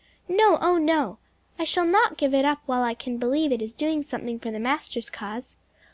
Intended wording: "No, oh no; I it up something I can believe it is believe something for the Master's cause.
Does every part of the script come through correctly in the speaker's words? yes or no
no